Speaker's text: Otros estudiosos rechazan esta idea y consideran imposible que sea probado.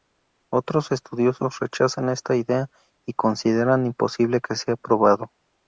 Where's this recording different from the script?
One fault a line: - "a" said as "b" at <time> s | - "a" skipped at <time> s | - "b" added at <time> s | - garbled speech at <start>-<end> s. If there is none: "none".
none